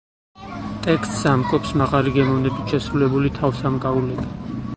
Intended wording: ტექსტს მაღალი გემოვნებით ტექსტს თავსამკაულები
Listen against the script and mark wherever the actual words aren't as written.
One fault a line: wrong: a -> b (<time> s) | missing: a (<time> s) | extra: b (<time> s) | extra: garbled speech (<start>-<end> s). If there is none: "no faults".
extra: ამკობს (1.3 s)
wrong: ტექსტს -> შესრულებული (2.7 s)